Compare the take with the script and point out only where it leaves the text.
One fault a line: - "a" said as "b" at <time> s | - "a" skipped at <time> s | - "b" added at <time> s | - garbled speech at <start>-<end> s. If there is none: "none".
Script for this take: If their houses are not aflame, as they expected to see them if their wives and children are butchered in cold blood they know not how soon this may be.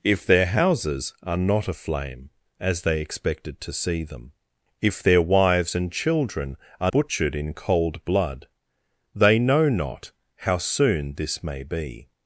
none